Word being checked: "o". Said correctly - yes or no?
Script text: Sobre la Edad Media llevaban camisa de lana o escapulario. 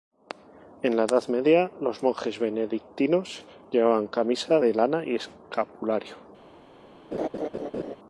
no